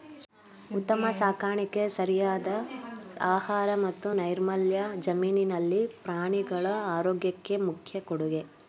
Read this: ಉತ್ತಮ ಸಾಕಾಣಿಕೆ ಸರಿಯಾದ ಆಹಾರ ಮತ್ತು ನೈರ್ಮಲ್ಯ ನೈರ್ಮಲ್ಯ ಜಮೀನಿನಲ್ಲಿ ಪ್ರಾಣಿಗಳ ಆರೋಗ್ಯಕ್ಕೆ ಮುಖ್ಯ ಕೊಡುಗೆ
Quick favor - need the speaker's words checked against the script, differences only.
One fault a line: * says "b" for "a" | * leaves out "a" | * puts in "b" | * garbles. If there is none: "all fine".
* leaves out "ನೈರ್ಮಲ್ಯ"